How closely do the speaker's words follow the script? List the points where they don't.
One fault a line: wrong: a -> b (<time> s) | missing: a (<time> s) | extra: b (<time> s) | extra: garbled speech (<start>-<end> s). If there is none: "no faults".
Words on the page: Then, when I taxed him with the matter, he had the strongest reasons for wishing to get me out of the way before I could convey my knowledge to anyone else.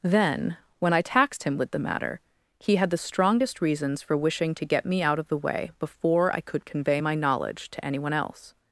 no faults